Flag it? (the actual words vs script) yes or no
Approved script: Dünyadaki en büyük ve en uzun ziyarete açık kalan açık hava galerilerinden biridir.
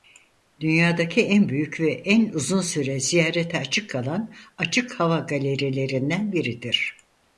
yes